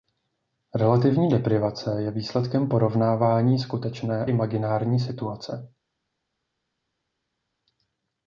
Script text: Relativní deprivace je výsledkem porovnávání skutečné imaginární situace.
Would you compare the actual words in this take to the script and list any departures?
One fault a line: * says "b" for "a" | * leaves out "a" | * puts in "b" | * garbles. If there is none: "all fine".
all fine